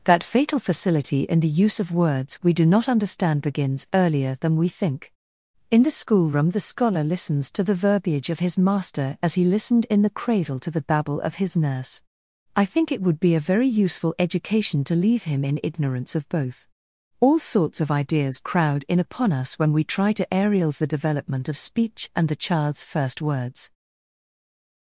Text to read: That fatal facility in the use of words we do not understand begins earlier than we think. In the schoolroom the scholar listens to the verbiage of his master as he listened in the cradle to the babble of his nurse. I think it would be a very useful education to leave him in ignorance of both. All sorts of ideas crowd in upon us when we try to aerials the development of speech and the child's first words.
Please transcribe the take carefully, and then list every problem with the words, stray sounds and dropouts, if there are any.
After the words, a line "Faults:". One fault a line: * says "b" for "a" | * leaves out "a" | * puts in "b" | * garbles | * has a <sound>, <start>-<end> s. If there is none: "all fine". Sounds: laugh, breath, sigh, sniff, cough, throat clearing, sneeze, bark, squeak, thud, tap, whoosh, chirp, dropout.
That fatal facility in the use of words we do not understand begins earlier than we think. In the schoolroom the scholar listens to the verbiage of his master as he listened in the cradle to the babble of his nurse. I think it would be a very useful education to leave him in ignorance of both. All sorts of ideas crowd in upon us when we try to aerials the development of speech and the child's first words.
Faults:
all fine